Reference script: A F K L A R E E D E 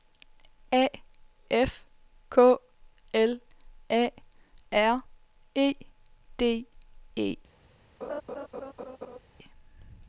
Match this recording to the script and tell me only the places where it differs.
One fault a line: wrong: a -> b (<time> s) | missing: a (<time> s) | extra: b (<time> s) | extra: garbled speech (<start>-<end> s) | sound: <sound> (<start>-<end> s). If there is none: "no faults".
missing: E (5.8 s)
sound: laugh (8.0-9.2 s)